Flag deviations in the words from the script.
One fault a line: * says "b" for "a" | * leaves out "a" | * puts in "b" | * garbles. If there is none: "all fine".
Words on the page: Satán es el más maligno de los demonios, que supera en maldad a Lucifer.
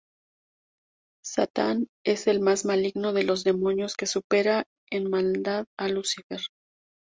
all fine